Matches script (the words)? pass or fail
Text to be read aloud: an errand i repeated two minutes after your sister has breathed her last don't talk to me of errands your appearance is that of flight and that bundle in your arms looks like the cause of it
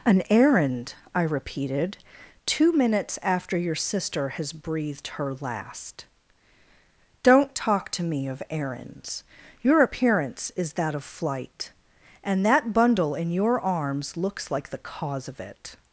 pass